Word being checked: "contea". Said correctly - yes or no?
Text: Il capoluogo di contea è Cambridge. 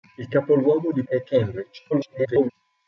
no